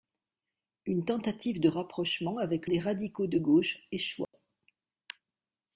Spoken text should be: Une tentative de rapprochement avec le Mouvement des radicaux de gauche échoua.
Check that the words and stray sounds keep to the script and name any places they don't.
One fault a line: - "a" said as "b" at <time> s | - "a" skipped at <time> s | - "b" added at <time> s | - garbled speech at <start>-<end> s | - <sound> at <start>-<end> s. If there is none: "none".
- "le Mouvement" skipped at 2.7 s
- dropout at 4.2-4.3 s